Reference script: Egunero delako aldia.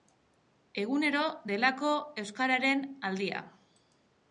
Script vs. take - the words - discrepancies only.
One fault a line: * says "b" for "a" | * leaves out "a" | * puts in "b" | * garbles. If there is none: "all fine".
* puts in "euskararen"